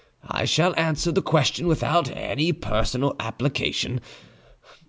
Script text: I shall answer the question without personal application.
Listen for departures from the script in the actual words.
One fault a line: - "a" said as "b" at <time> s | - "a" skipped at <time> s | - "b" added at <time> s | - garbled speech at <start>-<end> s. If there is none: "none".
- "any" added at 2.1 s